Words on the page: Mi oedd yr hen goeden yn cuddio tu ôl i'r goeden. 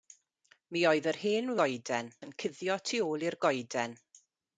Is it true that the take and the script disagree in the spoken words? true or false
false